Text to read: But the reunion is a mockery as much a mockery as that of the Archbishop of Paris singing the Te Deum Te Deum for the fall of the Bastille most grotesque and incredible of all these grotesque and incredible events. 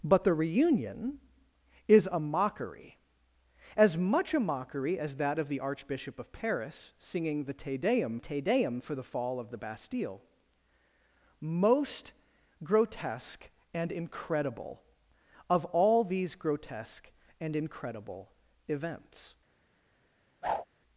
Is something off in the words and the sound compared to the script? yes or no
yes